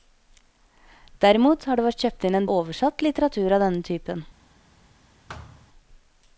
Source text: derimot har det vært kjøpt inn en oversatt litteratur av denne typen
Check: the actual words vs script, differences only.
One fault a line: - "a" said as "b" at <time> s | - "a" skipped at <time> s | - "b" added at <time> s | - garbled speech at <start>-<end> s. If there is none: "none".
none